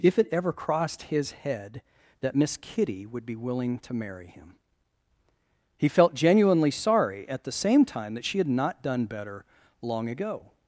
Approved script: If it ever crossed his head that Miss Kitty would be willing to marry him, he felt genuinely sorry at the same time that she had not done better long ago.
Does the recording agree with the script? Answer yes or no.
yes